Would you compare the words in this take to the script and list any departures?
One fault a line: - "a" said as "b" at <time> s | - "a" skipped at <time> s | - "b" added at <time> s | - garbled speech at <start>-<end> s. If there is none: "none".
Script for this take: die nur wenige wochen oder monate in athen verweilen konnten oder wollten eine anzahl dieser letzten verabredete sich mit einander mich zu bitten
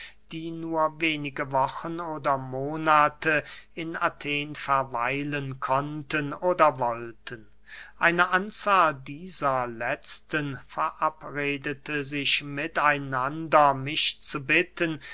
none